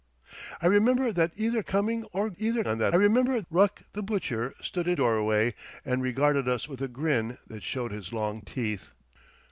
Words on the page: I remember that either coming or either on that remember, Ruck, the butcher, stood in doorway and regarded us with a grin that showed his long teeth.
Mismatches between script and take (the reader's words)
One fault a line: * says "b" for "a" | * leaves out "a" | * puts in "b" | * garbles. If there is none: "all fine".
all fine